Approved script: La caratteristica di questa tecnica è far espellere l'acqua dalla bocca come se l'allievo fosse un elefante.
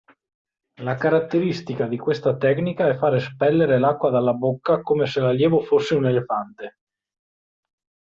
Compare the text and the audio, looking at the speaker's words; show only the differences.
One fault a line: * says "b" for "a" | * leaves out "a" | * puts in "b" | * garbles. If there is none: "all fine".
all fine